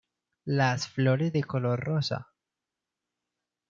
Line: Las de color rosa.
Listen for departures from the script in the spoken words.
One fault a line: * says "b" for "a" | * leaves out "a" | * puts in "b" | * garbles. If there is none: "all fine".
* puts in "flores"